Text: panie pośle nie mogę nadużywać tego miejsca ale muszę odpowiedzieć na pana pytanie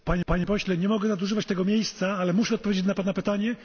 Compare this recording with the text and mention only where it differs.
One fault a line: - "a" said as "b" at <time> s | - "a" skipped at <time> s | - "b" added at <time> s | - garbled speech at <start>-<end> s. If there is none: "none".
- "panie" added at 0.3 s